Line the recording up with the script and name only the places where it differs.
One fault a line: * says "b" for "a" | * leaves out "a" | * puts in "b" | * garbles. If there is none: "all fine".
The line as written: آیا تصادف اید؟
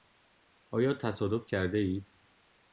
* puts in "کرده"